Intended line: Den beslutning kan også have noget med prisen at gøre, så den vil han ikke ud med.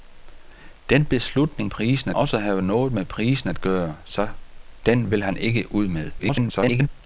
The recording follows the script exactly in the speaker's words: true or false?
false